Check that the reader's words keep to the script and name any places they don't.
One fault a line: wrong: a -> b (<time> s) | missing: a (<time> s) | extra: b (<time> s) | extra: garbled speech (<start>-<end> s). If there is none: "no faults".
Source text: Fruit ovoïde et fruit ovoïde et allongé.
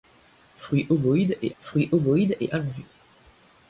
no faults